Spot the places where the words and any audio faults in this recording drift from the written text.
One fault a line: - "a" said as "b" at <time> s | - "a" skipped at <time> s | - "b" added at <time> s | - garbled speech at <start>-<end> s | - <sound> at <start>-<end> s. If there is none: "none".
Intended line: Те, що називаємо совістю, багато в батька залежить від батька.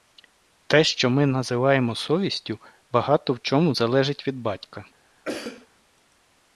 - "ми" added at 1.1 s
- "батька" said as "чому" at 3.4 s
- cough at 5.2-5.7 s